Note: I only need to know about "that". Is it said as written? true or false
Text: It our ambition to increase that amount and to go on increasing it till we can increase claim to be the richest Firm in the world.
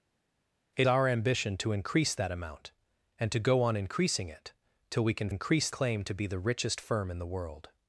true